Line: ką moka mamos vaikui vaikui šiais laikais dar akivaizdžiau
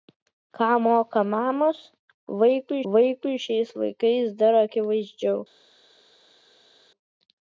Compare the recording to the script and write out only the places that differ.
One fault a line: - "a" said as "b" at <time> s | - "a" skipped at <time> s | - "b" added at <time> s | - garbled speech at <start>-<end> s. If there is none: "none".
none